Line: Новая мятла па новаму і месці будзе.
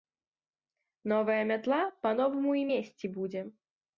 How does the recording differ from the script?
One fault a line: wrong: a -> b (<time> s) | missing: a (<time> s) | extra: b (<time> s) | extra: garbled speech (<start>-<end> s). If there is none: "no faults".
no faults